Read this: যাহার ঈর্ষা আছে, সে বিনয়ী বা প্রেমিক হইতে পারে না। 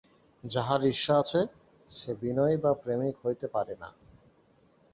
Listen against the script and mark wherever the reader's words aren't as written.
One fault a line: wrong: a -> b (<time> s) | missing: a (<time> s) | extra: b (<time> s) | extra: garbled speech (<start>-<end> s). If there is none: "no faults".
no faults